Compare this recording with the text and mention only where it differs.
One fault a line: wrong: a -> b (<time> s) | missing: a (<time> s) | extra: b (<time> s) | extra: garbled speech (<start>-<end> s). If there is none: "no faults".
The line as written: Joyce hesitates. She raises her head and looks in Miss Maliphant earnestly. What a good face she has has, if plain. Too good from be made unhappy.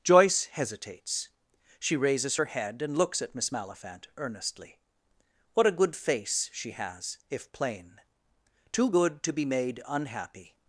wrong: in -> at (3.2 s)
missing: has (7.2 s)
wrong: from -> to (9.2 s)